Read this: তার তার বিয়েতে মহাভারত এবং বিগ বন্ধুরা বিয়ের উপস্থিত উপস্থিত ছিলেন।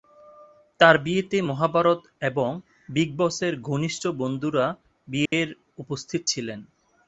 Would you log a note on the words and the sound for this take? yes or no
yes